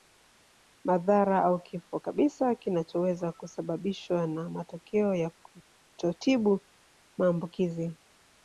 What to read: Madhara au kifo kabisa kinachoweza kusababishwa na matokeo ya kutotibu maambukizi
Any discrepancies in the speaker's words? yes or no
no